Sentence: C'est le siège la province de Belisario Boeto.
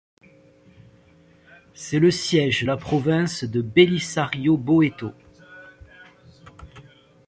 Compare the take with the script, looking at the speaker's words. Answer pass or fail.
pass